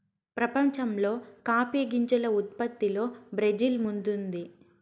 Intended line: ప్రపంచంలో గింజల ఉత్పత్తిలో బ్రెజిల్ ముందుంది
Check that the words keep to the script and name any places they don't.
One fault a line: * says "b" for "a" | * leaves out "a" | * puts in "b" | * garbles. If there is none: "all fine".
* puts in "కాఫీ"